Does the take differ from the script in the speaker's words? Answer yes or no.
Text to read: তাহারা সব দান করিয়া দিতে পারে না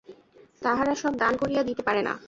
no